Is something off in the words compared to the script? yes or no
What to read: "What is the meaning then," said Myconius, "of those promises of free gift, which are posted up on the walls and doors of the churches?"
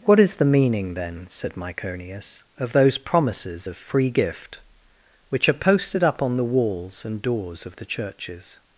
no